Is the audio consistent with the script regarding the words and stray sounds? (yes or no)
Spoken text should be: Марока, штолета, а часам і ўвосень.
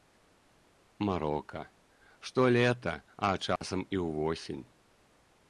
no